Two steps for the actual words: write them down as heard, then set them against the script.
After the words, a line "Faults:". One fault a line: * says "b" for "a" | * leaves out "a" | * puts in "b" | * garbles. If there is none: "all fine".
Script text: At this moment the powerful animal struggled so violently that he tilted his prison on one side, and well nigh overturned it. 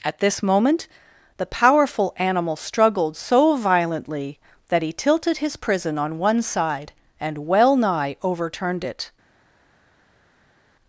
At this moment the powerful animal struggled so violently that he tilted his prison on one side, and well nigh overturned it.
Faults:
all fine